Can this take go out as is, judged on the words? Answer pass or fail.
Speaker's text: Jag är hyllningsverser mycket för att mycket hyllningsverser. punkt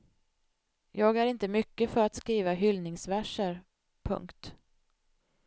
fail